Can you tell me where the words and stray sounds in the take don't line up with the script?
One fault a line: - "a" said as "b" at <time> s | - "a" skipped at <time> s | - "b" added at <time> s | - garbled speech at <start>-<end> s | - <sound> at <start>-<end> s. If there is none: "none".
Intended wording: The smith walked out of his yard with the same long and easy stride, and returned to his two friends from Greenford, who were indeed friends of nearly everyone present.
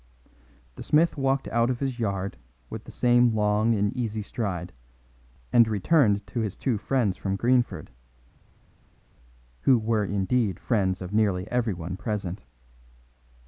none